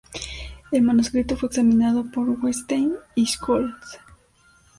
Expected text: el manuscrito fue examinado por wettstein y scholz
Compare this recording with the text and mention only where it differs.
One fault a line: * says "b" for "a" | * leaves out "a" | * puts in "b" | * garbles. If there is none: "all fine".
all fine